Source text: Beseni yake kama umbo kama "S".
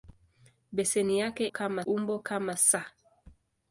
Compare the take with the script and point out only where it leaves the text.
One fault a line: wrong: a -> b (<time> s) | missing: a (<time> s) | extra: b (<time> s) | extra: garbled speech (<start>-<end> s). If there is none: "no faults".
no faults